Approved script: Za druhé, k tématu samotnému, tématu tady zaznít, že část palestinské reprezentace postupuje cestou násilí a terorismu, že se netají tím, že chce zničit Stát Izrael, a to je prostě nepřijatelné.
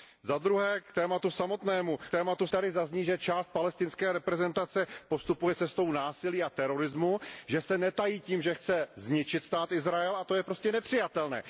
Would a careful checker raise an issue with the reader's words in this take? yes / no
no